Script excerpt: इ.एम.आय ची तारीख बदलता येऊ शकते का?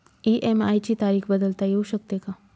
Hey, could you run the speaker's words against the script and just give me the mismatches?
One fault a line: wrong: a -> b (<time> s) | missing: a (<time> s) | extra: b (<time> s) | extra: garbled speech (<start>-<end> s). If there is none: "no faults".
no faults